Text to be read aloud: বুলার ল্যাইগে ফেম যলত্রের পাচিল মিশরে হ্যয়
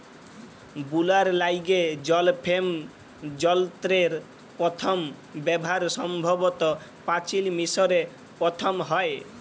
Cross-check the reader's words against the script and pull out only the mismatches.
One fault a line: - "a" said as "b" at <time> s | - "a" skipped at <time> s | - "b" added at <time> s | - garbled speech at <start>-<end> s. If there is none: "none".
- "জল" added at 2.0 s
- "পথম ব্যাভার সম্ভবত" added at 4.6 s
- "পথম" added at 8.4 s